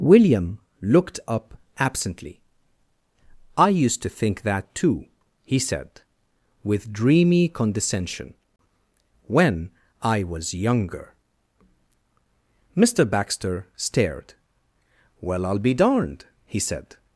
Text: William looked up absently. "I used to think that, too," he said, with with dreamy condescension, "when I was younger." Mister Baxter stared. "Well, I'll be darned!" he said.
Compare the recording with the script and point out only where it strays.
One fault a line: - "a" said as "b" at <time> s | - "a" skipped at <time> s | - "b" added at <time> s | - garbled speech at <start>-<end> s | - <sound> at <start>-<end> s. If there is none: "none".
- "with" skipped at 6.9 s